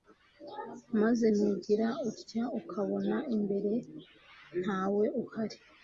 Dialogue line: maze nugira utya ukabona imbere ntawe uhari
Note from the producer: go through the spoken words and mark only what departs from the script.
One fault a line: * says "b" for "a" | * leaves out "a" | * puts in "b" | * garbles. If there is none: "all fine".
all fine